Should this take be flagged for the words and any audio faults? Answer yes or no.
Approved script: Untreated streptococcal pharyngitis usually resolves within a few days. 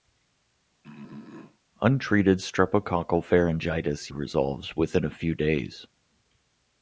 yes